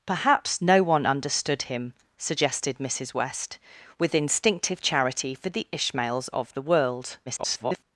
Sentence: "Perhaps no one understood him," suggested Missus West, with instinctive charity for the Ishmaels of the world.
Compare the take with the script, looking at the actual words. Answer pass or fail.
fail